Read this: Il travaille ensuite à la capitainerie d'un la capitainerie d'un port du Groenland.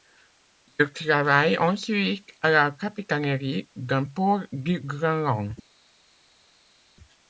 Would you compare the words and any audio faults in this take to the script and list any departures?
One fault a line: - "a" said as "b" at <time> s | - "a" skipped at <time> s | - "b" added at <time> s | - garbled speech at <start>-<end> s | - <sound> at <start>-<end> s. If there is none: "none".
- "la capitainerie d'un" skipped at 4.0 s